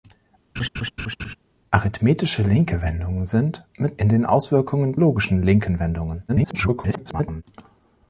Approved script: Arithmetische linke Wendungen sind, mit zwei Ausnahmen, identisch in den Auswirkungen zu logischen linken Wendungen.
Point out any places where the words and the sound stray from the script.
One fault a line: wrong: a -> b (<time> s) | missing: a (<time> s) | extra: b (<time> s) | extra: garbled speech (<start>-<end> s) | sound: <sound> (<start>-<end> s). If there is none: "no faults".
sound: laugh (0.6-1.4 s)
missing: zwei Ausnahmen identisch (4.0 s)
missing: zu (5.0 s)
extra: garbled speech (6.3-7.4 s)